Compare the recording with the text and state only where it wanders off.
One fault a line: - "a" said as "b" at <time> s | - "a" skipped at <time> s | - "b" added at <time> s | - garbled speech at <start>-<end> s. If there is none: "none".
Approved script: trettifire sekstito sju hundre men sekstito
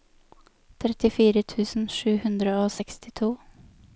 - "sekstito" said as "tusen" at 1.5 s
- "men" said as "og" at 2.6 s